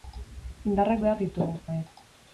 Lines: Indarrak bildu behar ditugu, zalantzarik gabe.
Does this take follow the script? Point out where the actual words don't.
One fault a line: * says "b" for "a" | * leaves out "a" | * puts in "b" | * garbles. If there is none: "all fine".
* leaves out "bildu"
* leaves out "zalantzarik"